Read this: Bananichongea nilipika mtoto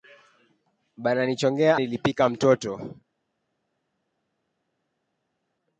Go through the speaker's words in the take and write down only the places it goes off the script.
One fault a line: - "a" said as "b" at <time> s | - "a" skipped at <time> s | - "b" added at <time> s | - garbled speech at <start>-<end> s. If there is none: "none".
none